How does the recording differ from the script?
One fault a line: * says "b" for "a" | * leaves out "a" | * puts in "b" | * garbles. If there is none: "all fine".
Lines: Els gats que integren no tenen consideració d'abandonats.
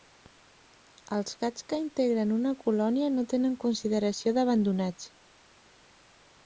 * puts in "una colònia"